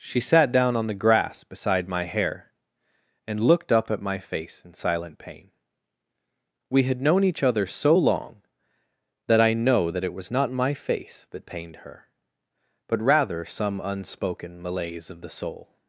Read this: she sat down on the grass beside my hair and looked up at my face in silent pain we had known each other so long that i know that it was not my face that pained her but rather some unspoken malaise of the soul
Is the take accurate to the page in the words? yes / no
yes